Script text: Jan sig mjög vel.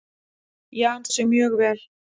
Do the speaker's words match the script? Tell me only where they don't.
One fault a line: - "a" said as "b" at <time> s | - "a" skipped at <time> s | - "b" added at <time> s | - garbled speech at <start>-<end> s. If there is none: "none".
none